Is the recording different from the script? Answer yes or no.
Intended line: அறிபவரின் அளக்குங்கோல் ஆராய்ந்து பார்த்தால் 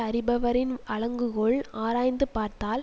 no